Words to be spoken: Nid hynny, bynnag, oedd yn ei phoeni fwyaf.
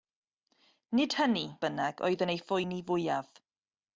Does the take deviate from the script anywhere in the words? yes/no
no